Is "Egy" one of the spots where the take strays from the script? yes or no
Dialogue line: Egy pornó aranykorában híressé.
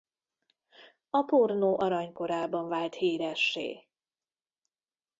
yes